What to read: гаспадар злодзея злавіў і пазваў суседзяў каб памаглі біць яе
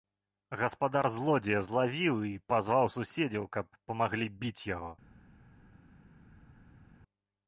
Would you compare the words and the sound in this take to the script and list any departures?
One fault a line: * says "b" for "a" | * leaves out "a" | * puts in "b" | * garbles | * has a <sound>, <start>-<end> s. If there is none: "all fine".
* says "яго" for "яе"